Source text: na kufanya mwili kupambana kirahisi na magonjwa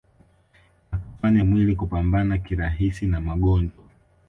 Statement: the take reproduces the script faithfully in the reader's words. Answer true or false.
true